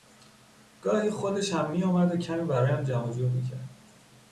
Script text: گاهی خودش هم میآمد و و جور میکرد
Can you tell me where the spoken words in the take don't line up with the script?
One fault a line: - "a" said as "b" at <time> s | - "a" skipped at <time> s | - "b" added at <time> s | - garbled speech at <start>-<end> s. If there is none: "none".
- "کمی برایم جمع" added at 2.2 s